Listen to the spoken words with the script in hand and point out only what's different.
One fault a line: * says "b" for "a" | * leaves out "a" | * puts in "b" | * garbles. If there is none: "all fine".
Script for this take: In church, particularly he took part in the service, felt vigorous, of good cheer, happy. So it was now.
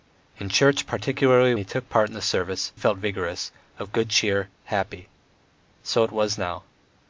all fine